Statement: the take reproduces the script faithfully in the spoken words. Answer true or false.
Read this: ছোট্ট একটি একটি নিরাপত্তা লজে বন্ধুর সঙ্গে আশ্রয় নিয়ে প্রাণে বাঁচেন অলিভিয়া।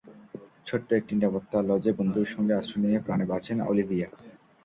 false